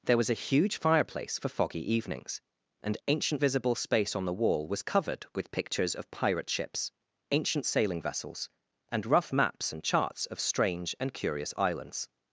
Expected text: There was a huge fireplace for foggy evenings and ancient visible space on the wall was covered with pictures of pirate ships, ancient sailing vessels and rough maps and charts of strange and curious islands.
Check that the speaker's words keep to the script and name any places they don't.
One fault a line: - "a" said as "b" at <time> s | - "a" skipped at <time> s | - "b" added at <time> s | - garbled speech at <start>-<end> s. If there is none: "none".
none